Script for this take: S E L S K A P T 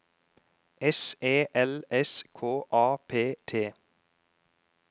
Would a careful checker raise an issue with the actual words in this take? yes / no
no